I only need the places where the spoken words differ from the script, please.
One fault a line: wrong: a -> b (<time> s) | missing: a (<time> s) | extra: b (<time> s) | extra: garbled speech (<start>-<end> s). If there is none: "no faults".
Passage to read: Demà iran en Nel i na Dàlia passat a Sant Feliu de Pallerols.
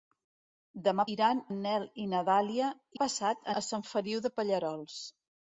no faults